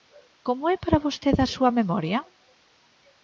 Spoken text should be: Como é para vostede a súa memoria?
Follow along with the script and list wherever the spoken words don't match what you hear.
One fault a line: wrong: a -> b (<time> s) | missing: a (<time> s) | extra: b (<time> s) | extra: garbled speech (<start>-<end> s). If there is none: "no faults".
no faults